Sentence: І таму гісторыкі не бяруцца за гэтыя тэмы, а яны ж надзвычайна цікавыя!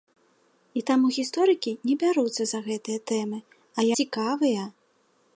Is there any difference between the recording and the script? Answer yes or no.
yes